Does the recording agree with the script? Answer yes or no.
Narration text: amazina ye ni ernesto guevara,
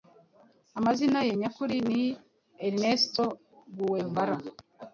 no